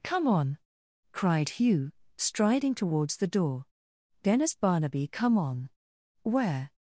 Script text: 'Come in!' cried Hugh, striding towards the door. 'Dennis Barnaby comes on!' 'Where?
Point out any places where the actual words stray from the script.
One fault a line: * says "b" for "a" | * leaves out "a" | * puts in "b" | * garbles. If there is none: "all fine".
* says "on" for "in"
* says "come" for "comes"